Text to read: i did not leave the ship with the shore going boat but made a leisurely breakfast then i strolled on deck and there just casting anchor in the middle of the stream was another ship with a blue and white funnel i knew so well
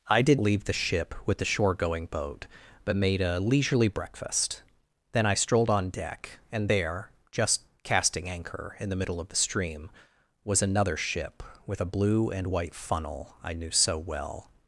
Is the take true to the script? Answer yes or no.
no